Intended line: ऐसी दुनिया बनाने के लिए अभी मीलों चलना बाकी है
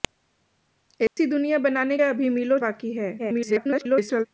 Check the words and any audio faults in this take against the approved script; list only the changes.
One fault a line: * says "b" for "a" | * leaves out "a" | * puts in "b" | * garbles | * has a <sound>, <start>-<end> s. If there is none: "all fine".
* has a dropout, 1.1-1.2 s
* leaves out "के लिए"
* leaves out "चलना"
* garbles